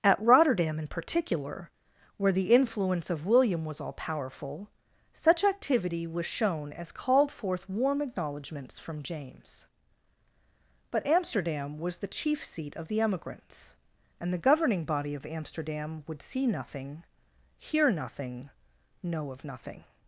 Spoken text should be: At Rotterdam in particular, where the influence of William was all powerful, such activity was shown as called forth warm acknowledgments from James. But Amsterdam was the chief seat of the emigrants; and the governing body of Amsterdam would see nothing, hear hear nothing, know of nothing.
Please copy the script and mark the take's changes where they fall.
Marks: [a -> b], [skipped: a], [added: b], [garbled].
At Rotterdam in particular, where the influence of William was all powerful, such activity was shown as called forth warm acknowledgments from James. But Amsterdam was the chief seat of the emigrants; and the governing body of Amsterdam would see nothing, hear [skipped: hear] nothing, know of nothing.